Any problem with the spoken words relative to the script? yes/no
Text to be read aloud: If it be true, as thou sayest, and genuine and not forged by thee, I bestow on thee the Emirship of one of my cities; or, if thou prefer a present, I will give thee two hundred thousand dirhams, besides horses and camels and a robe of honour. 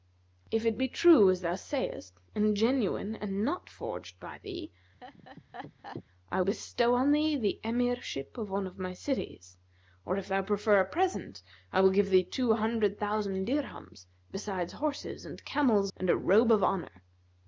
no